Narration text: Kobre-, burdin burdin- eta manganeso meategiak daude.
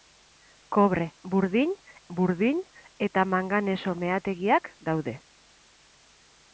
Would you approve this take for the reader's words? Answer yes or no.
yes